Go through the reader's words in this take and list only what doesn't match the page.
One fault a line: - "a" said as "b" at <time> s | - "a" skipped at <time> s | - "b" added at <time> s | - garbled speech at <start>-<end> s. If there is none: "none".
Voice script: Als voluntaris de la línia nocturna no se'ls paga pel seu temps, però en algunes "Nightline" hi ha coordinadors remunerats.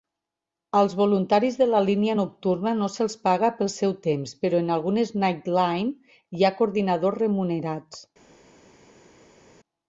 none